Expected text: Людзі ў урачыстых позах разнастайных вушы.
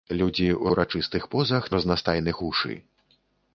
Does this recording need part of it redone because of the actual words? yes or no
no